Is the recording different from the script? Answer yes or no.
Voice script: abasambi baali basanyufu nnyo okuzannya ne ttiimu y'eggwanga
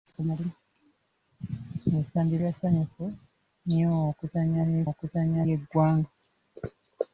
yes